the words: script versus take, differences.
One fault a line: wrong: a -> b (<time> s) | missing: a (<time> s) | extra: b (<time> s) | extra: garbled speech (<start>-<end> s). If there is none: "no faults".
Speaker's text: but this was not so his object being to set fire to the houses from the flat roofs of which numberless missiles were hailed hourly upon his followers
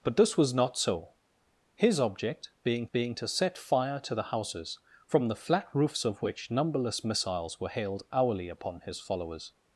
extra: being (2.9 s)